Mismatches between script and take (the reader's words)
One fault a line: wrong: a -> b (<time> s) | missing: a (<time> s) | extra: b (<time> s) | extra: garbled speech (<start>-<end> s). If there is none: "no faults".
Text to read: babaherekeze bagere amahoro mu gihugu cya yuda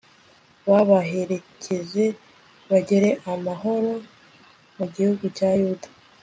no faults